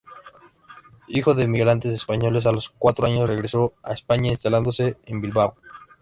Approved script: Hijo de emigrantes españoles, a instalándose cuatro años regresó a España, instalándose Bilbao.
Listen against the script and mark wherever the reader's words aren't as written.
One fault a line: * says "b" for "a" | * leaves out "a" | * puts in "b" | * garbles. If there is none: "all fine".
* says "los" for "instalándose"
* puts in "en"